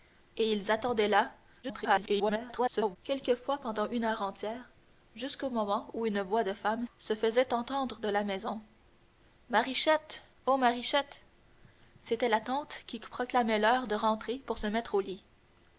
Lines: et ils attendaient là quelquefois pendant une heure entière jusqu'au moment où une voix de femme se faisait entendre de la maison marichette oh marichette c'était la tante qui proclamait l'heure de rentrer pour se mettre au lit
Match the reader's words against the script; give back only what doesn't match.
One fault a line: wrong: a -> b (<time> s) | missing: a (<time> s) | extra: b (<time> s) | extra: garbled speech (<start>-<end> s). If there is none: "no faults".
extra: garbled speech (1.6-3.0 s)